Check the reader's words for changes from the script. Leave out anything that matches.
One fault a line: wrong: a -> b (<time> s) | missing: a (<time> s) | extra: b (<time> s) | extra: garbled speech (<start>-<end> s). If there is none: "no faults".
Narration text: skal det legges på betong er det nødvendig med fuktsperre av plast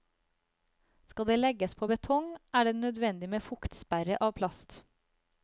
no faults